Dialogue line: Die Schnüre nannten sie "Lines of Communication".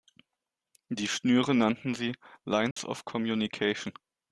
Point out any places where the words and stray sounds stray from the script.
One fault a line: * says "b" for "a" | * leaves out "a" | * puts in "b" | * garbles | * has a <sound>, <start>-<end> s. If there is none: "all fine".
* has a dropout, 2.7-2.8 s